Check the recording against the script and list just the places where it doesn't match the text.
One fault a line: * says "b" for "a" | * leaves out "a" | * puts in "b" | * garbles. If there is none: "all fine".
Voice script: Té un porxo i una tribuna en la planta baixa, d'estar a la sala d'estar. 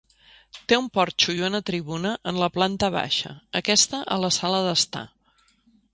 * says "aquesta" for "d'estar"